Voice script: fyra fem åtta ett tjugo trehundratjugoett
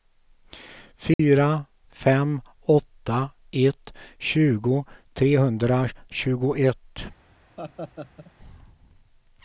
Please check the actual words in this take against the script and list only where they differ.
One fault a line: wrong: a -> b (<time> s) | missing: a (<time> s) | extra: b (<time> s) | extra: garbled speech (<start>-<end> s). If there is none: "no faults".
no faults